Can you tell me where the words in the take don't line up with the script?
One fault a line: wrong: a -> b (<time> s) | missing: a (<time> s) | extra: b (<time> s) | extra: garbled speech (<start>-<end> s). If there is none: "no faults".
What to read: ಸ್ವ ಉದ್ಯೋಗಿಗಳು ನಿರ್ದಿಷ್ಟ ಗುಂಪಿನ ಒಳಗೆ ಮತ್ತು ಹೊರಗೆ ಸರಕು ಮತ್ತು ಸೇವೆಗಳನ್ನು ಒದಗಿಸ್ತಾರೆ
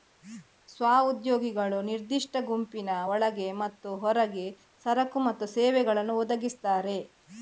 no faults